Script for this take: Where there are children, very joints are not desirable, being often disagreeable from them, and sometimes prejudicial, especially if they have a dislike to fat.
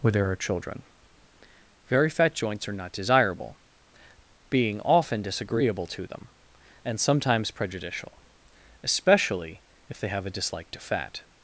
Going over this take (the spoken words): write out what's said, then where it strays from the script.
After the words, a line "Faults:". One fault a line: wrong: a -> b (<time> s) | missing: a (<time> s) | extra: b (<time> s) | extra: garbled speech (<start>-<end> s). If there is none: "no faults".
Where there are children, very fat joints are not desirable, being often disagreeable to them, and sometimes prejudicial, especially if they have a dislike to fat.
Faults:
extra: fat (2.1 s)
wrong: from -> to (5.9 s)